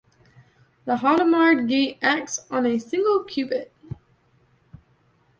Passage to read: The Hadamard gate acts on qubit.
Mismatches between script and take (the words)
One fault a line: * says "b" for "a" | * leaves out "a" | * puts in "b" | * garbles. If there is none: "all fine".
* puts in "a single"